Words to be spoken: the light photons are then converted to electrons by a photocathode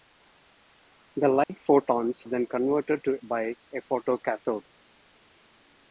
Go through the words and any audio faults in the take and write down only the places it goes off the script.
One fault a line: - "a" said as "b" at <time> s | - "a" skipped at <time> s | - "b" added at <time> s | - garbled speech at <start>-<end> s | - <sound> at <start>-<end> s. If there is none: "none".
- dropout at 1.4-1.5 s
- "are" skipped at 2.2 s
- "electrons" skipped at 3.1 s